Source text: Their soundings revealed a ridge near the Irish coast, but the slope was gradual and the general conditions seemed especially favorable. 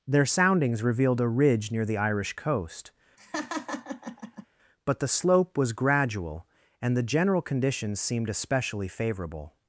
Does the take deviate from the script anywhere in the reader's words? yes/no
no